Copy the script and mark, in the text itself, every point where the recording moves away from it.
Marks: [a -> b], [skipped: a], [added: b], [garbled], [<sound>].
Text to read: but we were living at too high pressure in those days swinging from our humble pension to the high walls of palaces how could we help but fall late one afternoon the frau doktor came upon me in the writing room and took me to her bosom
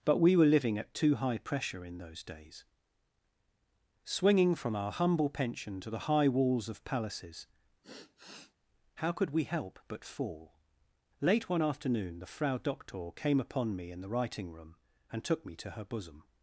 but we were living at too high pressure in those days swinging from our humble pension to the high walls of palaces [sigh] how could we help but fall late one afternoon the frau doktor came upon me in the writing room and took me to her bosom